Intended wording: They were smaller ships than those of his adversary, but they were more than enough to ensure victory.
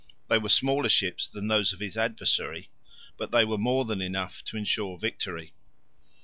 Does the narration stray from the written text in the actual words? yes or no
no